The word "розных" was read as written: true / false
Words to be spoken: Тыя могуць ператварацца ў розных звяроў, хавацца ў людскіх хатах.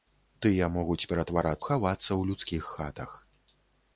false